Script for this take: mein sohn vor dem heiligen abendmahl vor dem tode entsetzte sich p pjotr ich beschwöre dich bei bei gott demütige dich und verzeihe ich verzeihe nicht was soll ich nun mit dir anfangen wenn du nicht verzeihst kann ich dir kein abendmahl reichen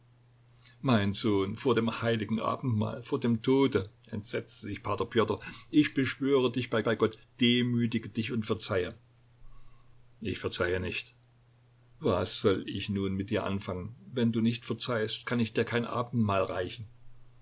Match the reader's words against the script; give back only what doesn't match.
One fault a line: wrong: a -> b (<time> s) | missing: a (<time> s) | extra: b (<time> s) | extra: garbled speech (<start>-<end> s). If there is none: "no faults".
no faults